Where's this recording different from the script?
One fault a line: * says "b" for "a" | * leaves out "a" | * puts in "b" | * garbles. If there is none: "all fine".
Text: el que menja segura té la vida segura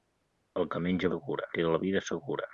all fine